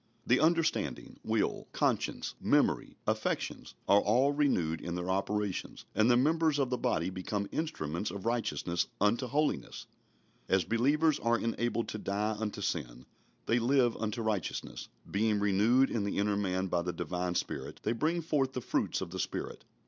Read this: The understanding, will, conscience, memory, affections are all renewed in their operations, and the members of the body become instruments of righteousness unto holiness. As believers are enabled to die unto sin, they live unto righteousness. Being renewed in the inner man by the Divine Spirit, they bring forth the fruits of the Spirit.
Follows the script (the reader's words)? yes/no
yes